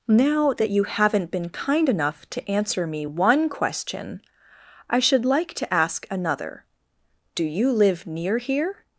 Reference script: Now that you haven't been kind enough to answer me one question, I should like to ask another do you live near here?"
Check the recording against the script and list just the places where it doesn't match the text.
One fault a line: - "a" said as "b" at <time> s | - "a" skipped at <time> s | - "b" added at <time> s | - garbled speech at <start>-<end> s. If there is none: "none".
none